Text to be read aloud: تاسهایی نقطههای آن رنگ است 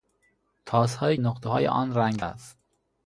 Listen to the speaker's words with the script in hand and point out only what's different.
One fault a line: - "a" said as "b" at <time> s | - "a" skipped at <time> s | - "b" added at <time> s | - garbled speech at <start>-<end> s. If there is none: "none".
none